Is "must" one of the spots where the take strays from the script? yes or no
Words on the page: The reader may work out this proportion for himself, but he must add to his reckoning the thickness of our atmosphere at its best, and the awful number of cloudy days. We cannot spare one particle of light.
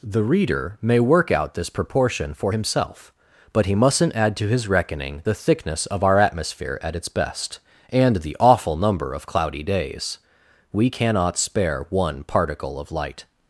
yes